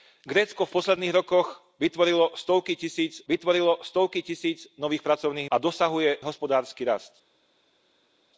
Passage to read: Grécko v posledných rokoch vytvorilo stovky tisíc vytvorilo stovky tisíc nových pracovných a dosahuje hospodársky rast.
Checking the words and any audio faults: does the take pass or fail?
pass